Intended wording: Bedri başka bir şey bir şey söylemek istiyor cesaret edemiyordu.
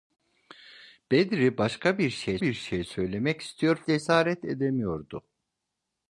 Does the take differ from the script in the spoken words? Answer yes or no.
no